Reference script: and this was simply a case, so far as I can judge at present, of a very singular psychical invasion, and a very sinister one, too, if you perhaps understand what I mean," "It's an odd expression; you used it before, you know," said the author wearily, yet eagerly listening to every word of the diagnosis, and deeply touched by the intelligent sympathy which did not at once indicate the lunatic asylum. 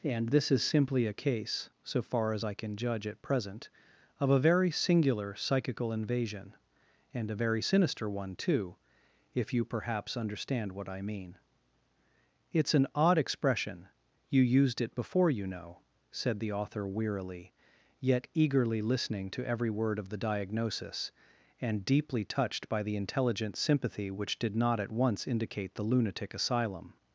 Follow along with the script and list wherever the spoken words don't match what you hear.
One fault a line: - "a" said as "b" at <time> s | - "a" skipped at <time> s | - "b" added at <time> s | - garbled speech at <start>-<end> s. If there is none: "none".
- "was" said as "is" at 0.5 s